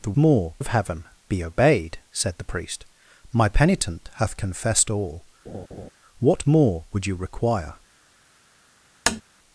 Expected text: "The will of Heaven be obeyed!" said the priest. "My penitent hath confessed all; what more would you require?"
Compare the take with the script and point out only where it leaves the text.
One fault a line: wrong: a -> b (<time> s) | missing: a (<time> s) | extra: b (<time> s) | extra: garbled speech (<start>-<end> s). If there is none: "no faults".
wrong: will -> more (0.1 s)